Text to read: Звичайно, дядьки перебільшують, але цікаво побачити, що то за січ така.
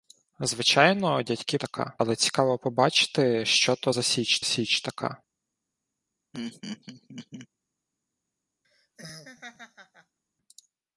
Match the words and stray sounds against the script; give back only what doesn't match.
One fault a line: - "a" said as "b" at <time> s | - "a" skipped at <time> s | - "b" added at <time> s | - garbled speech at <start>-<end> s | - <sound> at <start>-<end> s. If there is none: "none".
- "перебільшують" said as "така" at 1.6 s
- "січ" added at 4.4 s
- laugh at 6.3-7.5 s
- laugh at 8.6-10.2 s